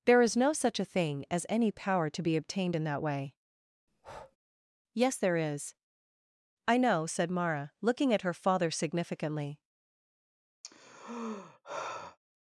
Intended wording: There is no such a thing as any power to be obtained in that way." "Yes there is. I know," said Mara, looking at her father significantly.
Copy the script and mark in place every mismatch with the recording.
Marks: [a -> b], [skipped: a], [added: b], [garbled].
There is no such a thing as any power to be obtained in that way." "Yes there is. I know," said Mara, looking at her father significantly.